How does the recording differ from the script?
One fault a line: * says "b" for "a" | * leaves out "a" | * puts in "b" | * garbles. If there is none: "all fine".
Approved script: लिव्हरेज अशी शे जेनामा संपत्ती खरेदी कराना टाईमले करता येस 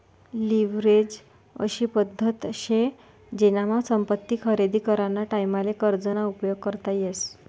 * puts in "पद्धत"
* puts in "कर्ज ना उपयोग"